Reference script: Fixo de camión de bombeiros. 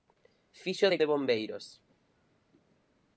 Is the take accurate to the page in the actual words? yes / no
no